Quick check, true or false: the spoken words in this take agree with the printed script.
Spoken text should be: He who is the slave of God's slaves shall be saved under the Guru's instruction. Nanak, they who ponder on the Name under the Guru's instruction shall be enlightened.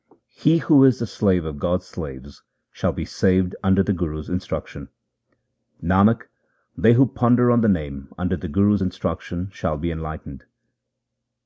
true